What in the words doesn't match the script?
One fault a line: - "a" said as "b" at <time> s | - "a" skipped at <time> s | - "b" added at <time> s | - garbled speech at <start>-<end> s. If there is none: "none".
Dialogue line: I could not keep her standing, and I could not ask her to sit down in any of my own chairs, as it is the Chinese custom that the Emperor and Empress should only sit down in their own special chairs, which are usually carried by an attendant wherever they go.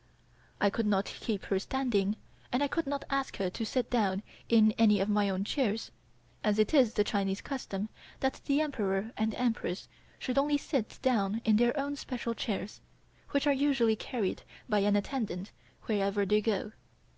none